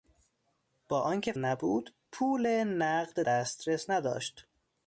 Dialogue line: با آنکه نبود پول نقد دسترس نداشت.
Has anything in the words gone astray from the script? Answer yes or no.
no